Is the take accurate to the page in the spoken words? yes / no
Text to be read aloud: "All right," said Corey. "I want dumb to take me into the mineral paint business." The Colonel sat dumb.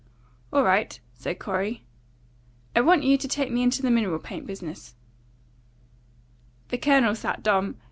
no